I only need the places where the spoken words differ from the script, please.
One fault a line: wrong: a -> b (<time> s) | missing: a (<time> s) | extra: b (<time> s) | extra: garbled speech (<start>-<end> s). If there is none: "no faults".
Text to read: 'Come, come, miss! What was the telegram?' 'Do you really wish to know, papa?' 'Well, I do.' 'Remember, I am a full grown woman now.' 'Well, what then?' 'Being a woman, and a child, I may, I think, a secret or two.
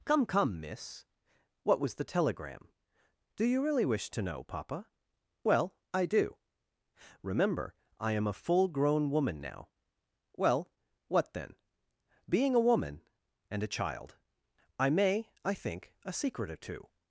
no faults